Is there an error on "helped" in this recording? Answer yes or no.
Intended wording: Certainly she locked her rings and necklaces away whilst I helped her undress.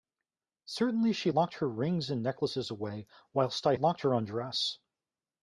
yes